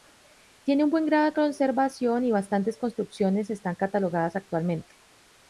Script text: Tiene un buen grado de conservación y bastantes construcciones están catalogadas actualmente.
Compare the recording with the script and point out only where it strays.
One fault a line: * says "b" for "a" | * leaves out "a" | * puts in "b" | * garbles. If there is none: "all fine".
all fine